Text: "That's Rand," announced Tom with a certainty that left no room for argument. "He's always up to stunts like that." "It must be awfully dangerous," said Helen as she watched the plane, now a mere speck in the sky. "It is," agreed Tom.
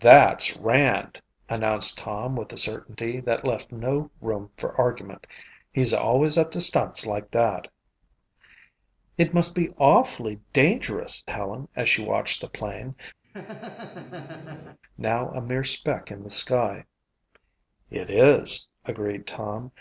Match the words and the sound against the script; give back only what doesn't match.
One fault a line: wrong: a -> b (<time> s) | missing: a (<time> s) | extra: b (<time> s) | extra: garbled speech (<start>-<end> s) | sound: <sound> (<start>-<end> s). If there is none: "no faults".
missing: said (11.2 s)
sound: laugh (13.2-14.8 s)